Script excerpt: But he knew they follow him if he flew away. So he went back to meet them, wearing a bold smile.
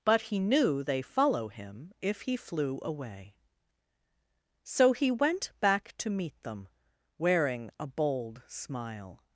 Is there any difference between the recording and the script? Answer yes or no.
no